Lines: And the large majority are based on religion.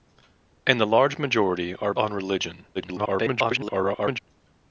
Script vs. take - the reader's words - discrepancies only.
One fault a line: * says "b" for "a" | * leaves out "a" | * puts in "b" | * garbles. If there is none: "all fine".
* leaves out "based"
* garbles